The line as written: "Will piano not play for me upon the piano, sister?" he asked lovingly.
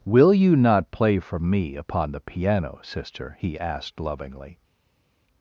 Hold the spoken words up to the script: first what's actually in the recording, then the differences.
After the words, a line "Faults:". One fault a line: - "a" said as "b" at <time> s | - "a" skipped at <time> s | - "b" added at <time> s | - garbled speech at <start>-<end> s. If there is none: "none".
"Will you not play for me upon the piano, sister?" he asked lovingly.
Faults:
- "piano" said as "you" at 0.3 s